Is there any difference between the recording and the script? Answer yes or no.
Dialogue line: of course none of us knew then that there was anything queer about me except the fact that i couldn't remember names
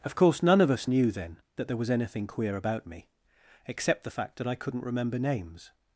no